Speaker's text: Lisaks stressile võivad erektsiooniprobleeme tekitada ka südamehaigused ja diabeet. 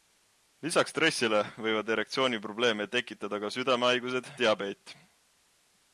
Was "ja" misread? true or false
true